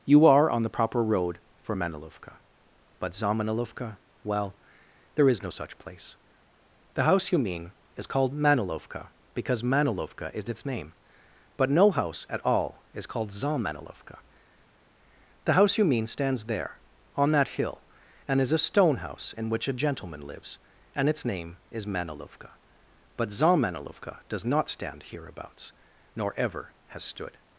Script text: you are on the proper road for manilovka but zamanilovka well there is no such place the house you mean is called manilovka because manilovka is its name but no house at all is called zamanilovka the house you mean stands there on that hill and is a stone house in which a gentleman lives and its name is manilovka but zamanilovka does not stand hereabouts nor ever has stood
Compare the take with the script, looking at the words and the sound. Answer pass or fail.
pass